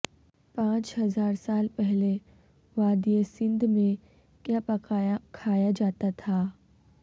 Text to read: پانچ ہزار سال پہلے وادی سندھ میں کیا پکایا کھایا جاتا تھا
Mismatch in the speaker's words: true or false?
false